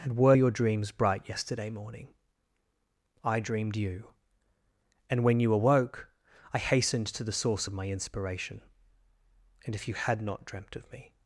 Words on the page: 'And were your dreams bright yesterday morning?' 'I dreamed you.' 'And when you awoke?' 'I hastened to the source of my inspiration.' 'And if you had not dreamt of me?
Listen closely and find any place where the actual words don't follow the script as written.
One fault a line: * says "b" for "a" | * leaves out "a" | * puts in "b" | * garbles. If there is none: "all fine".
all fine